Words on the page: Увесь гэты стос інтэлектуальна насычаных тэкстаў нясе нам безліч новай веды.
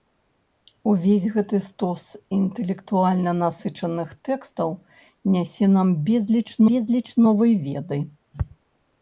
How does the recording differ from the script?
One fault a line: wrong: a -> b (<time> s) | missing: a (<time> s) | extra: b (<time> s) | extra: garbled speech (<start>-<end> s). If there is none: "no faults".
extra: безліч (6.7 s)